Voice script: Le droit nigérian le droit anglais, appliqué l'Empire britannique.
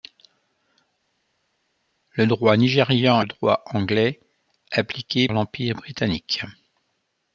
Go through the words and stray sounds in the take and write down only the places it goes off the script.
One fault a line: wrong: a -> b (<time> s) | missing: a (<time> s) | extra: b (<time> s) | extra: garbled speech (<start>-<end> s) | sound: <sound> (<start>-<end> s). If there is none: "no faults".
no faults